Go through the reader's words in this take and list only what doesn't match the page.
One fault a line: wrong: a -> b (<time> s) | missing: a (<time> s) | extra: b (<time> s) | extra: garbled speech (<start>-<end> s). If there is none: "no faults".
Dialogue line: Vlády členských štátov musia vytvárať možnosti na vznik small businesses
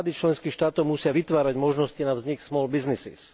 no faults